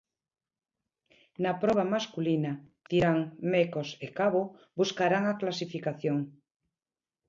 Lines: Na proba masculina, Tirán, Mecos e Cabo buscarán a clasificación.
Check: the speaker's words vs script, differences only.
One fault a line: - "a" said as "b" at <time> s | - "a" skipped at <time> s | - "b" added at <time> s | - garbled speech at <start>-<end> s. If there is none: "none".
none